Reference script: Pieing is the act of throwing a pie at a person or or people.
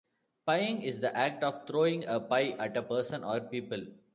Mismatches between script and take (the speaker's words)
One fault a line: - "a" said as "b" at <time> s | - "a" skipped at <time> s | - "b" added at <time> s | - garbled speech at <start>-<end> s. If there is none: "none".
- "or" skipped at 3.4 s